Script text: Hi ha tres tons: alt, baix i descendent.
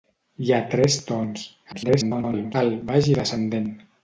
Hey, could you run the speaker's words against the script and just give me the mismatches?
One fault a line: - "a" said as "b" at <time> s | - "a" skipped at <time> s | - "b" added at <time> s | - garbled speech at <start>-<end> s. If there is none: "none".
- garbled speech at 1.7-2.5 s